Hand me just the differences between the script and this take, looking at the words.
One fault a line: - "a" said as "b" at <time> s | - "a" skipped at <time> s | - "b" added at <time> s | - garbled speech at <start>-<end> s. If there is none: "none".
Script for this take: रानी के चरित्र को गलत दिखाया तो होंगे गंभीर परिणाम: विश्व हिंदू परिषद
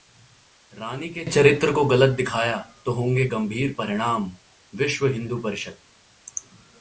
none